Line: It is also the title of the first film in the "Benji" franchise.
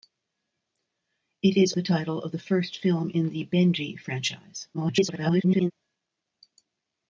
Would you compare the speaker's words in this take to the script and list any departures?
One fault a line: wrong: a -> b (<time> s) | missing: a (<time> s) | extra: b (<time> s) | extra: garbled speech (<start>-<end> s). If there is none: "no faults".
missing: also (1.7 s)
extra: garbled speech (4.7-5.7 s)